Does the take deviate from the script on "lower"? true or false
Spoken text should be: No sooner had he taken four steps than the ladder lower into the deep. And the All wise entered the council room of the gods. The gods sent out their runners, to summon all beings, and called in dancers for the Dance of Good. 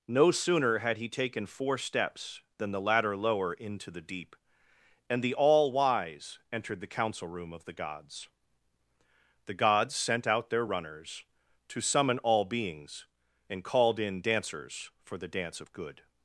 false